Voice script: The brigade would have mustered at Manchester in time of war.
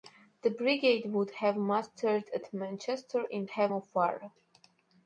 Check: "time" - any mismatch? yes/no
yes